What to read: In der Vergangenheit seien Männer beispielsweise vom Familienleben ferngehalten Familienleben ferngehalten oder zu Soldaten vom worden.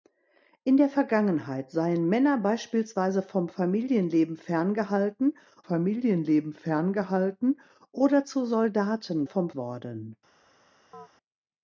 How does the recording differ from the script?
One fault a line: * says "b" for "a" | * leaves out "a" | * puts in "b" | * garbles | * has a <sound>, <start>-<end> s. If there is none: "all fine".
* has a chirp, 10.9-11.1 s